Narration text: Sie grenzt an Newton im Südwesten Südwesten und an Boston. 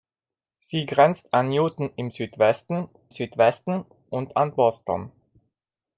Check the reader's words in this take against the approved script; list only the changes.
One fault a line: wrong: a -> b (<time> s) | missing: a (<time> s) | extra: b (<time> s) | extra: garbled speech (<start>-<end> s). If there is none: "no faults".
no faults